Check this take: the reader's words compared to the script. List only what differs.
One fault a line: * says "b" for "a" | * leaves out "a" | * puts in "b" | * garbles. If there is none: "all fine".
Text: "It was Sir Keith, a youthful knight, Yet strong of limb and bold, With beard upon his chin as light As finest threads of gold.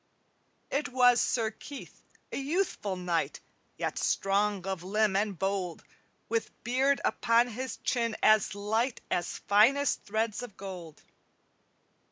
all fine